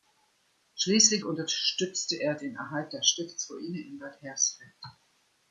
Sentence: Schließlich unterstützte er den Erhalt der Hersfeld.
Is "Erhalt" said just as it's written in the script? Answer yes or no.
yes